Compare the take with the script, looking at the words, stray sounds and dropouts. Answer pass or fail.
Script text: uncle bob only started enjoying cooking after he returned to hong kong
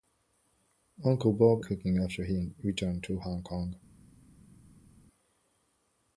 fail